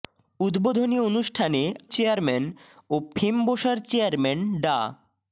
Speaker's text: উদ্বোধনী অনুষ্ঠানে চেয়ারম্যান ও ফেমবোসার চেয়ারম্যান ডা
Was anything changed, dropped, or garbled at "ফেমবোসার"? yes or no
no